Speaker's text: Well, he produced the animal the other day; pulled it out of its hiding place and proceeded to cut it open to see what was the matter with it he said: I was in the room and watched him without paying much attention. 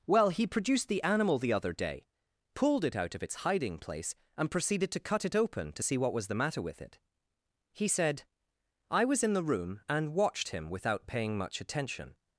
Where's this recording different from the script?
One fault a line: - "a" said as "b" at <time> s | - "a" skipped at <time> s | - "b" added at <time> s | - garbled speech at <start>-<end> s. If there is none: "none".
none